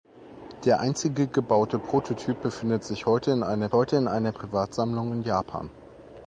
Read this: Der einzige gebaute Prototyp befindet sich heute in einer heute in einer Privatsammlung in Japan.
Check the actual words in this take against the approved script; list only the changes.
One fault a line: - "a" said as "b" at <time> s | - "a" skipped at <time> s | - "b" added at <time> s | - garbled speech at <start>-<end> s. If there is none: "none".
none